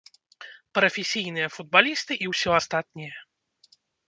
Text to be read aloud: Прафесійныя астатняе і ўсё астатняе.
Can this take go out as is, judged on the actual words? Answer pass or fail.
fail